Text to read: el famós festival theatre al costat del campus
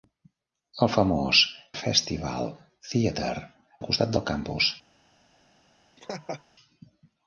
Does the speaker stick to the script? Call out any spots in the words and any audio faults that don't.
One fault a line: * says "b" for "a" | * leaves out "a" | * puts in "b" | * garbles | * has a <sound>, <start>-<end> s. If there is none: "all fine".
* has a laugh, 6.0-6.4 s